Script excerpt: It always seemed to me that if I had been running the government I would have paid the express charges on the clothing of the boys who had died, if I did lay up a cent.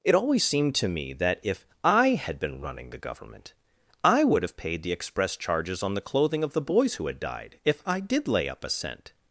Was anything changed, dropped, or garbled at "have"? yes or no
no